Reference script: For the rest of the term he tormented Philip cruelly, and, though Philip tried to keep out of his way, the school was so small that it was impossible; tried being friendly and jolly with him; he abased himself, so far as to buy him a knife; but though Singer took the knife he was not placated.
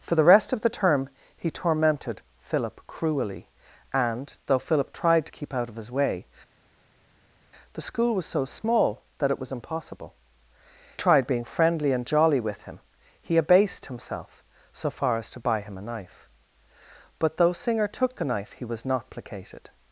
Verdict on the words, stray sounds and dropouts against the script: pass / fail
pass